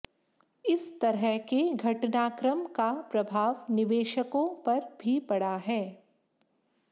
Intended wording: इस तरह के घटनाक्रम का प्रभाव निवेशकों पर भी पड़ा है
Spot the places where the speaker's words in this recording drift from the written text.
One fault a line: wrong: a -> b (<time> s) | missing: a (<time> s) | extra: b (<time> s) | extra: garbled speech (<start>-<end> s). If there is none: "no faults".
no faults